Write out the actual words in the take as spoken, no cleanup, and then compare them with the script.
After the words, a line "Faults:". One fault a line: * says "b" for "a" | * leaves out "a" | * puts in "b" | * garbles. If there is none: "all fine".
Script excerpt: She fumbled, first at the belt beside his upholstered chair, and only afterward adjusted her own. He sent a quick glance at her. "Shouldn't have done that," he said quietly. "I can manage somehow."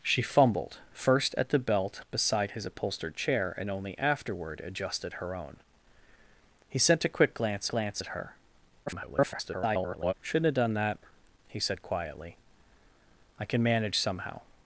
She fumbled, first at the belt beside his upholstered chair, and only afterward adjusted her own. He sent a quick glance glance at her. [garbled] "Shouldn't have done that," he said quietly. "I can manage somehow."
Faults:
* puts in "glance"
* garbles